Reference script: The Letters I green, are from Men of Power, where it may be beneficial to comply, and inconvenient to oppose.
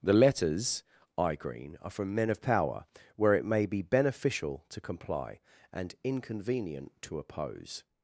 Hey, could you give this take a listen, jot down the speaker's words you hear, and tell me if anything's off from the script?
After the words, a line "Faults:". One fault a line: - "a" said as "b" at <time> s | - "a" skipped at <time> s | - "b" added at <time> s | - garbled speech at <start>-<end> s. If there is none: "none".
The Letters I green, are from Men of Power, where it may be beneficial to comply, and inconvenient to oppose.
Faults:
none